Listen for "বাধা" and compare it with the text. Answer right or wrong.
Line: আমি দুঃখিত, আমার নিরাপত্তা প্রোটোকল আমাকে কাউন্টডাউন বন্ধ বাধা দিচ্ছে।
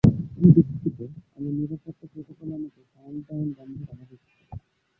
right